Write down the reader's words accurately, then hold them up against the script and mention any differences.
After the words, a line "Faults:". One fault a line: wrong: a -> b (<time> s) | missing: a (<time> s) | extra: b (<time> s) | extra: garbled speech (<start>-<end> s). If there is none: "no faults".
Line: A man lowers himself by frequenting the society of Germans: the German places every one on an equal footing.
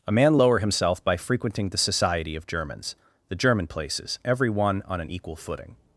A man lower himself by frequenting the society of Germans: the German places every one on an equal footing.
Faults:
wrong: lowers -> lower (0.4 s)